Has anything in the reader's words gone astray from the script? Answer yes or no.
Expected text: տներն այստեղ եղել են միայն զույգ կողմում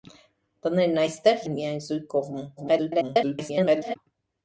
yes